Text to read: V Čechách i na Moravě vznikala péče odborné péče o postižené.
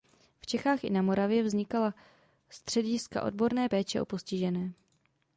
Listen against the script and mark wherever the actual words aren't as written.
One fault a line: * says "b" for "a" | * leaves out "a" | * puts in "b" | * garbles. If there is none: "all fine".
* says "střediska" for "péče"